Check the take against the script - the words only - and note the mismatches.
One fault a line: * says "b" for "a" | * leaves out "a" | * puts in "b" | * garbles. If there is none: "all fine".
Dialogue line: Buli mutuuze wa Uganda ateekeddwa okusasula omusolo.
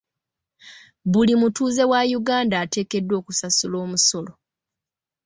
all fine